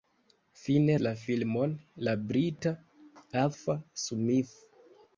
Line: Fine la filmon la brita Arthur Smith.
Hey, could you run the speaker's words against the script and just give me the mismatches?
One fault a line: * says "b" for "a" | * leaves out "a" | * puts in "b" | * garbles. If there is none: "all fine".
all fine